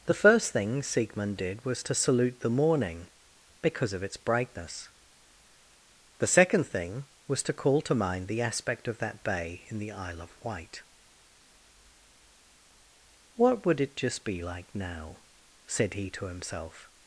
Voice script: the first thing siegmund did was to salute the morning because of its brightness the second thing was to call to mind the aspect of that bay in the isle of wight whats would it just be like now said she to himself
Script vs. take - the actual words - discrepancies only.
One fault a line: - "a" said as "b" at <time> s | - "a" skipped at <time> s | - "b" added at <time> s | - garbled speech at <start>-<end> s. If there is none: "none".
- "whats" said as "what" at 13.4 s
- "she" said as "he" at 15.9 s